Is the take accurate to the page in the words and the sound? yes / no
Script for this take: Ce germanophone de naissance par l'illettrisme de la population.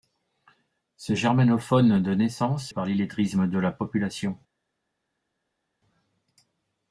yes